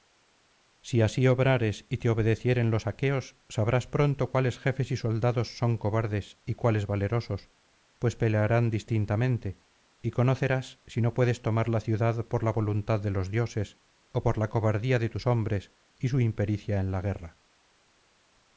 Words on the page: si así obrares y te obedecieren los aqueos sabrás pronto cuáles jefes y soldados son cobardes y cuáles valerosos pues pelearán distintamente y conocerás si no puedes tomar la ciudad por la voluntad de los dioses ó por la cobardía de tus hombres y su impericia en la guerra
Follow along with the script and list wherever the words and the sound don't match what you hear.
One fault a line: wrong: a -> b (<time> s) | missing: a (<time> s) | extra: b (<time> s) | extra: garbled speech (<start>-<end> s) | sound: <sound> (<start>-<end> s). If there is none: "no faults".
no faults